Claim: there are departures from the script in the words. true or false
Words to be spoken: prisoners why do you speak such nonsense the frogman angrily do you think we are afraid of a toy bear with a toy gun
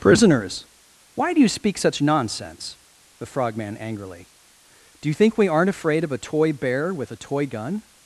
true